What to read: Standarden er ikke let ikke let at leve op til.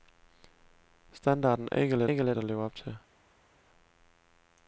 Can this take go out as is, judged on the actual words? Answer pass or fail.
pass